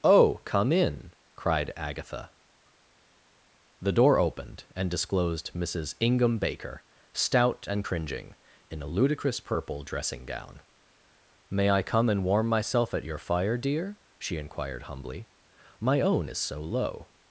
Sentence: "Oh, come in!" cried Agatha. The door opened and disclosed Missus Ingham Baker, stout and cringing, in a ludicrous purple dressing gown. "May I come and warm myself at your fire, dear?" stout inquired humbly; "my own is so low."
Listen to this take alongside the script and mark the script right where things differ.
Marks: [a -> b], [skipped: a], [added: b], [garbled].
"Oh, come in!" cried Agatha. The door opened and disclosed Missus Ingham Baker, stout and cringing, in a ludicrous purple dressing gown. "May I come and warm myself at your fire, dear?" [stout -> she] inquired humbly; "my own is so low."